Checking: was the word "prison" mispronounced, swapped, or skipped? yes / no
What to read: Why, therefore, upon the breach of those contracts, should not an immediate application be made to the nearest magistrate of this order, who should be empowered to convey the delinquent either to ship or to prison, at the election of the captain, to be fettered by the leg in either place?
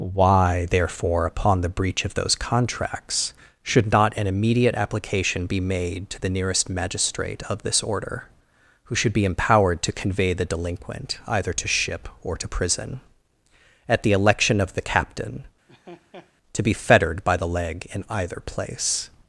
no